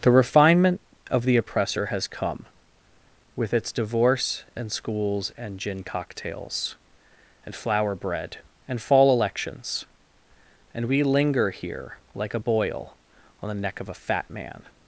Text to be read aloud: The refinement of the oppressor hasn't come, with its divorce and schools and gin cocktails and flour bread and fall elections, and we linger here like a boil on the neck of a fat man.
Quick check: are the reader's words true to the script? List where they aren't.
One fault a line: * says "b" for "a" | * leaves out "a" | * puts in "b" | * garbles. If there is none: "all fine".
* says "has" for "hasn't"